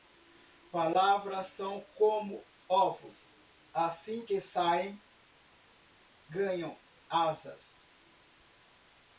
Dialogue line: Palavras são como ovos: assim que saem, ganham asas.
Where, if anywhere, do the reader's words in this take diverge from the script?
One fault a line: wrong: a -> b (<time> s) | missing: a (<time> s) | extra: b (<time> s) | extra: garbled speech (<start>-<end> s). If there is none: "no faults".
no faults